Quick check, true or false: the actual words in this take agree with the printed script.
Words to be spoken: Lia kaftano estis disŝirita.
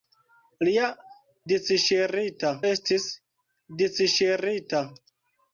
false